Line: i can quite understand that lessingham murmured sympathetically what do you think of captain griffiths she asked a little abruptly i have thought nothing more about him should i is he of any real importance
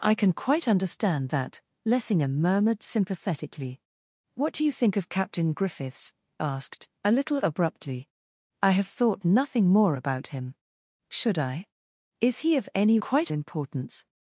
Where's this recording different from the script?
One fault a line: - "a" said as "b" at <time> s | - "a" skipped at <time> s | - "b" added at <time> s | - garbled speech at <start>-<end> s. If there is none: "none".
- "she" skipped at 6.1 s
- "real" said as "quite" at 13.0 s